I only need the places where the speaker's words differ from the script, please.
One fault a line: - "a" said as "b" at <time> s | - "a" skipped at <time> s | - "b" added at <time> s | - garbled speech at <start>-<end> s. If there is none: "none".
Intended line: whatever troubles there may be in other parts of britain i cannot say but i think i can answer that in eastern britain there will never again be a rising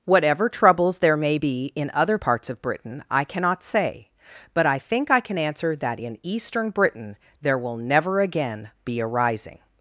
none